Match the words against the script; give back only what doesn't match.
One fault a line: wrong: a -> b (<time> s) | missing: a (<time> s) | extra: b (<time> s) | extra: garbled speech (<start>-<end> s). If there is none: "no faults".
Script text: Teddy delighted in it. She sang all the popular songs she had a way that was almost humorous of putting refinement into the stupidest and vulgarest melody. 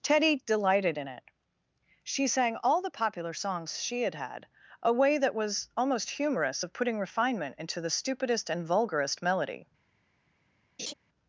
extra: had (4.2 s)